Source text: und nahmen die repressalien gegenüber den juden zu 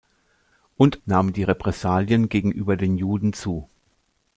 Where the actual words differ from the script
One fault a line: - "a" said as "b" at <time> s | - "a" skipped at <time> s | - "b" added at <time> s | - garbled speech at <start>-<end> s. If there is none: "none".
none